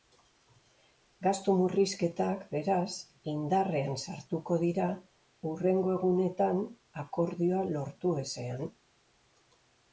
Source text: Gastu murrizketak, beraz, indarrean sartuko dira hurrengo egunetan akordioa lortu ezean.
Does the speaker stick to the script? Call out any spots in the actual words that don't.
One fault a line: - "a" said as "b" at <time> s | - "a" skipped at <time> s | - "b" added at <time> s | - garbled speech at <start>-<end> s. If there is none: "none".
none